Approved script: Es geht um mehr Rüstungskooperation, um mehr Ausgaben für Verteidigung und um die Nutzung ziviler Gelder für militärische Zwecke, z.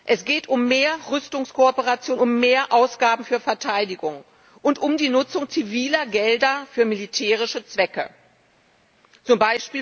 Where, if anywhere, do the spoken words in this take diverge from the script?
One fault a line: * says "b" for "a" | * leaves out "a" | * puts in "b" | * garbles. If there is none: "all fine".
all fine